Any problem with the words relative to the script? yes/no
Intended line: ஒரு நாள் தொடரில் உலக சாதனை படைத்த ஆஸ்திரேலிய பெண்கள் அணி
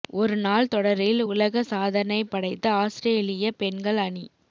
no